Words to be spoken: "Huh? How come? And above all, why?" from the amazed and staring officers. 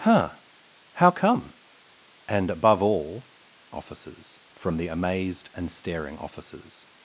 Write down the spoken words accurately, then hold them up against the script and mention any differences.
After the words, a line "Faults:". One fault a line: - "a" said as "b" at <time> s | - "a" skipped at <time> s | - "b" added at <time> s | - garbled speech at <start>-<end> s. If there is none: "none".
"Huh? How come? And above all, officers?" from the amazed and staring officers.
Faults:
- "why" said as "officers" at 3.7 s